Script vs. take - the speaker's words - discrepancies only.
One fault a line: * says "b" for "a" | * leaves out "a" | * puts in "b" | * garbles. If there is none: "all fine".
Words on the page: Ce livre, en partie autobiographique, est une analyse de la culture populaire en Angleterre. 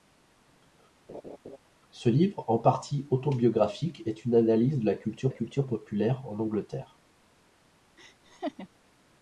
* puts in "culture"